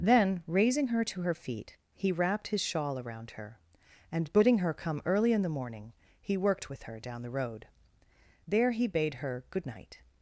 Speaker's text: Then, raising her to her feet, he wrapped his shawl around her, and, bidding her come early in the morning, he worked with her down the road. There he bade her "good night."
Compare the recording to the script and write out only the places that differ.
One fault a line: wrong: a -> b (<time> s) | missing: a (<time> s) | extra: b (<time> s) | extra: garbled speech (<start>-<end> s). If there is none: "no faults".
no faults